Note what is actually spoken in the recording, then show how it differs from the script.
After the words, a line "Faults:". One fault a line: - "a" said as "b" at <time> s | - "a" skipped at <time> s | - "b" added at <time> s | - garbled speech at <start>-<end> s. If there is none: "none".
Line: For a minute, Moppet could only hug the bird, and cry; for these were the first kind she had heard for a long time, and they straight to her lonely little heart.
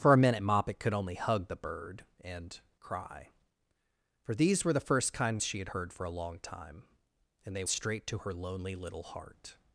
For a minute, Moppet could only hug the bird, and cry; for these were the first kind she had heard for a long time, and they straight to her lonely little heart.
Faults:
none